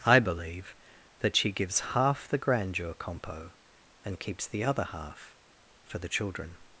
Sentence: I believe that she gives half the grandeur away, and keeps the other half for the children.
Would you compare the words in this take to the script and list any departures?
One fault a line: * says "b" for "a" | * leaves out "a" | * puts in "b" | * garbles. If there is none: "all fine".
* says "compo" for "away"